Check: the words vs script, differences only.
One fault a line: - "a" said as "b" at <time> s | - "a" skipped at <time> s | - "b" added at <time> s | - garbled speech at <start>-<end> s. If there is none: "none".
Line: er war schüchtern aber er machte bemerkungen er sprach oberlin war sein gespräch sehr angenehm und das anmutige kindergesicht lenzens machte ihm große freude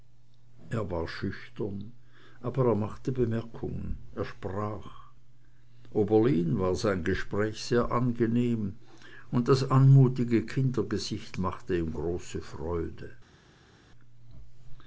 - "lenzens" skipped at 11.4 s